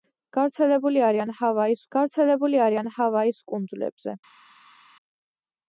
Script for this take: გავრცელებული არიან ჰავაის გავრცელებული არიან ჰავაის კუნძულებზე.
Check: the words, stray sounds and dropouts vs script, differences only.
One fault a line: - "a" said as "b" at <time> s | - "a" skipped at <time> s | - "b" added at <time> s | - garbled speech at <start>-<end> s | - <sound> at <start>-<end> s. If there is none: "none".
none